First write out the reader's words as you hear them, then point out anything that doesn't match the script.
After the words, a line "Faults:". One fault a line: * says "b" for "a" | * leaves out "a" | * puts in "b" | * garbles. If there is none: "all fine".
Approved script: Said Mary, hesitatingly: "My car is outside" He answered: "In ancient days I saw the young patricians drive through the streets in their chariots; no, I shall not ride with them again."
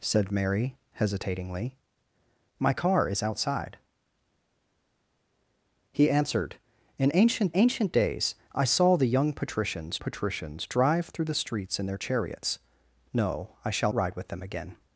Said Mary, hesitatingly: "My car is outside" He answered: "In ancient ancient days I saw the young patricians patricians drive through the streets in their chariots; no, I shall ride with them again."
Faults:
* puts in "ancient"
* puts in "patricians"
* leaves out "not"